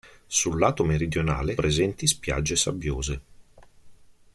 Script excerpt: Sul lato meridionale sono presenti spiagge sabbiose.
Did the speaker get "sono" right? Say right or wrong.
wrong